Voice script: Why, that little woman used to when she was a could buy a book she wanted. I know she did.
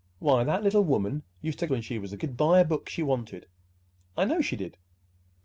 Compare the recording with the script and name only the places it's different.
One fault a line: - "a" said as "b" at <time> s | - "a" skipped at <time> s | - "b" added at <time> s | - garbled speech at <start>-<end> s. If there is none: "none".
none